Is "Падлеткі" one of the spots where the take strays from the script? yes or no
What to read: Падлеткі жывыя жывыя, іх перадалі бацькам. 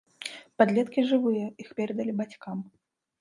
no